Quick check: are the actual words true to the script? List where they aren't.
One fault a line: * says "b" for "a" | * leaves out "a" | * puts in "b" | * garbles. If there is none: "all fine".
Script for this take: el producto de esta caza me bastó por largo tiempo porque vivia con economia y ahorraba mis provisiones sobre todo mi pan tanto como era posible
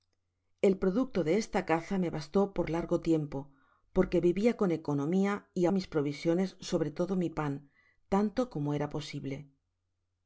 * leaves out "ahorraba"